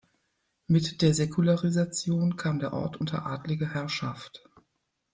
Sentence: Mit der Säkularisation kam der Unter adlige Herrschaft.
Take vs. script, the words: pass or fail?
fail